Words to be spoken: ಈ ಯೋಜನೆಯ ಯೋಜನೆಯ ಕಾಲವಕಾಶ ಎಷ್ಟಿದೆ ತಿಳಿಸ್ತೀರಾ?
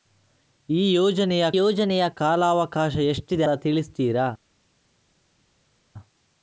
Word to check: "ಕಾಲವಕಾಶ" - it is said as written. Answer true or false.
true